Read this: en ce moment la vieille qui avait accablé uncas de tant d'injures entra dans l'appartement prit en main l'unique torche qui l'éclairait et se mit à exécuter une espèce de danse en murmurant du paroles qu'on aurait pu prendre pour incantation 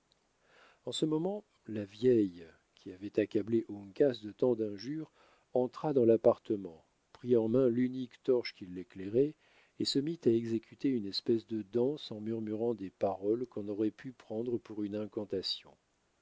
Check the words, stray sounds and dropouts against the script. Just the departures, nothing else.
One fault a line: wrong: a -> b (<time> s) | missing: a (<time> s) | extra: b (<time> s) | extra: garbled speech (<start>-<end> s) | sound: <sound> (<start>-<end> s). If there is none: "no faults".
wrong: du -> des (12.7 s)
extra: une (14.8 s)